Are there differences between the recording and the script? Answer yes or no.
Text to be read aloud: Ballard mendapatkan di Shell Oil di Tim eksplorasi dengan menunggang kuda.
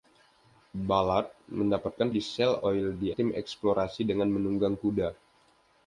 no